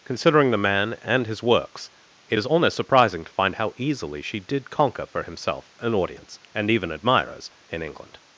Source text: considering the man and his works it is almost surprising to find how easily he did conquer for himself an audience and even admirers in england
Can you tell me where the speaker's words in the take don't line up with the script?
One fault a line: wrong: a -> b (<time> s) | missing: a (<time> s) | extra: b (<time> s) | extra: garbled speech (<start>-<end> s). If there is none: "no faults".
wrong: he -> she (4.2 s)